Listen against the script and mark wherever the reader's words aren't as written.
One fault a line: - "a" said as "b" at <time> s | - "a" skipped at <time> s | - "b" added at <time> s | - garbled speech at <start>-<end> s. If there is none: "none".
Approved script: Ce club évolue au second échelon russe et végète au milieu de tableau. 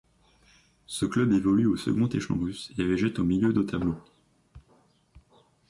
none